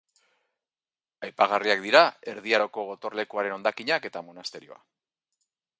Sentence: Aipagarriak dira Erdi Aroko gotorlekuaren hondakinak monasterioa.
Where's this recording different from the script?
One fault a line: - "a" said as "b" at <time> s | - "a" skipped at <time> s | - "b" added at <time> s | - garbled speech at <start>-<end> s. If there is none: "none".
- "eta" added at 4.1 s